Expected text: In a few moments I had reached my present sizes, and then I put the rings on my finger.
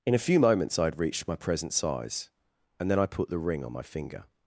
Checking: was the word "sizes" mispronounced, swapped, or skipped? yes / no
yes